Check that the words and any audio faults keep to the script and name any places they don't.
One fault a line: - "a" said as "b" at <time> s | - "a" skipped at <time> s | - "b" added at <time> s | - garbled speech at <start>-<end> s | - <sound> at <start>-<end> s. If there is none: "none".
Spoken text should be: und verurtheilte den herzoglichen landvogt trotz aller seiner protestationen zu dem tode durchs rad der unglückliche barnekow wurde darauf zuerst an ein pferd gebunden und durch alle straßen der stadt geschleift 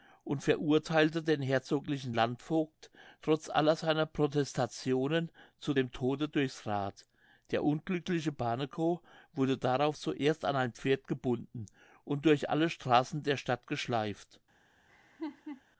- laugh at 14.9-15.6 s